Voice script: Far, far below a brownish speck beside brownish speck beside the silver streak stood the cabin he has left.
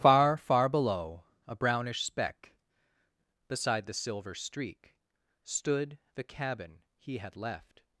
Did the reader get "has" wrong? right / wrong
wrong